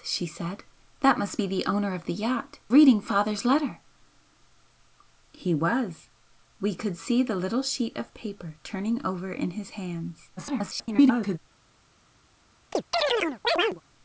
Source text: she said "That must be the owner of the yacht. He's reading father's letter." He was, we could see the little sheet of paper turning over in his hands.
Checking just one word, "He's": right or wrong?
wrong